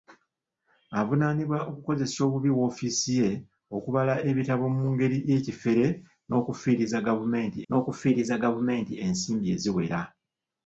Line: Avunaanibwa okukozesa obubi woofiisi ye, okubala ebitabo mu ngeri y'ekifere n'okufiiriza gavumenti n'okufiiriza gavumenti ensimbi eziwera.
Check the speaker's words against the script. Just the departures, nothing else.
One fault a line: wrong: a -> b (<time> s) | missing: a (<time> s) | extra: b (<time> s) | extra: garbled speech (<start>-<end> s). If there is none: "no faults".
no faults